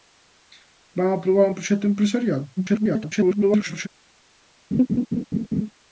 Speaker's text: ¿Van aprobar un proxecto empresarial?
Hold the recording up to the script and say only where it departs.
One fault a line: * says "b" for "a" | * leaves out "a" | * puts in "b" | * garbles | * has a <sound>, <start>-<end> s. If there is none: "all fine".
* garbles
* has a laugh, 4.7-5.7 s